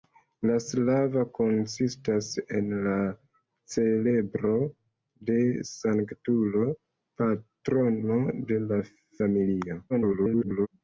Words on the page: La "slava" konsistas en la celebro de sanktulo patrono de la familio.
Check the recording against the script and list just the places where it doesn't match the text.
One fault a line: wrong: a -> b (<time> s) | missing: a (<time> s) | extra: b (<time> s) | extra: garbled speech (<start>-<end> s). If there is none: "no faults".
extra: garbled speech (9.9-10.7 s)